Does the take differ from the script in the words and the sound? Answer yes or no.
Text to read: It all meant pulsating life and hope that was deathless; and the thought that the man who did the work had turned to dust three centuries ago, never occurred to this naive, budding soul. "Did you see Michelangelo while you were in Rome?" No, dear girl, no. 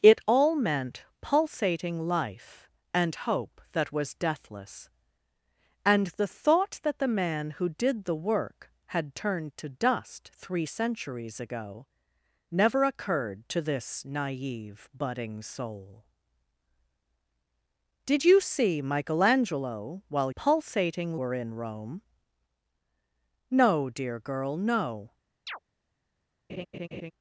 yes